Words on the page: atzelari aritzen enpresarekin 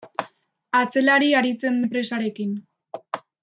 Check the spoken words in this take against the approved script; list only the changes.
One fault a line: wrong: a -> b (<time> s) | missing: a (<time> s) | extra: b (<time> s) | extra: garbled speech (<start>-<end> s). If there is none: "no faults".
no faults